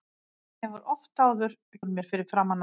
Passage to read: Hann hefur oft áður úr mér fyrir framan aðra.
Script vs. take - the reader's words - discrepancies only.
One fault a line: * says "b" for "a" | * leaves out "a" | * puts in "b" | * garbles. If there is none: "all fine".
all fine